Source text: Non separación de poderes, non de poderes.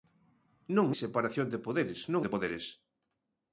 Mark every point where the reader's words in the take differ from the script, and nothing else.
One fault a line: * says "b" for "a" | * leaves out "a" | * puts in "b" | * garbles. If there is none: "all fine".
all fine